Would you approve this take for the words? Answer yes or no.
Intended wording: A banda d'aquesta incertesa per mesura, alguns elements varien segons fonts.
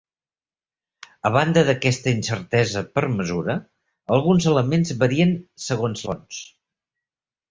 yes